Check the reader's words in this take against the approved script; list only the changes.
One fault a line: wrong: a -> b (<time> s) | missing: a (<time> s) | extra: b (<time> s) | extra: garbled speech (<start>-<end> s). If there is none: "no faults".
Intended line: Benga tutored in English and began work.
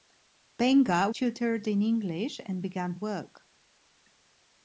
no faults